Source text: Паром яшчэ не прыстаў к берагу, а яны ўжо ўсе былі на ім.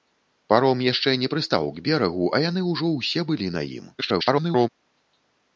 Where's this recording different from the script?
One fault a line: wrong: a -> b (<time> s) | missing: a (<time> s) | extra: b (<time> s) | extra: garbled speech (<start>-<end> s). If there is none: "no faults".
extra: garbled speech (4.0-4.7 s)